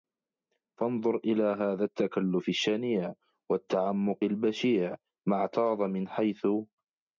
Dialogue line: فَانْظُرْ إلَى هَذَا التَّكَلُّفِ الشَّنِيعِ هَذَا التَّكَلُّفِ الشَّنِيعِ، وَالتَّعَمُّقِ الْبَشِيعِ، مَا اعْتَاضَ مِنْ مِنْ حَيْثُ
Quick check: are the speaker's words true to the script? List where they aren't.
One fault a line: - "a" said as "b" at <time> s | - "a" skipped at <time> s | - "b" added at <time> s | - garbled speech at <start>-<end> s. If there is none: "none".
- "هَذَا التَّكَلُّفِ الشَّنِيعِ" skipped at 3.1 s
- "مِنْ" skipped at 6.1 s